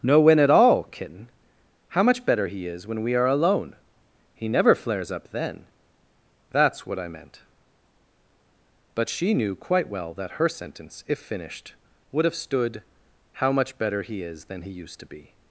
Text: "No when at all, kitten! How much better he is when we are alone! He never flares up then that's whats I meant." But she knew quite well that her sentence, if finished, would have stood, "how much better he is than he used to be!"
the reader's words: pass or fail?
fail